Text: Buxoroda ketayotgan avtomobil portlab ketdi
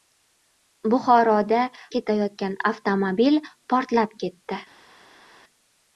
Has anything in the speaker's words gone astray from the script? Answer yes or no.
no